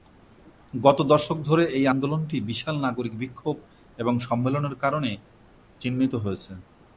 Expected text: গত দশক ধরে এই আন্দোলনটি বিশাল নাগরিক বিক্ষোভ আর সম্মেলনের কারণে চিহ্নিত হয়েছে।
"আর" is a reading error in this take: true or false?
true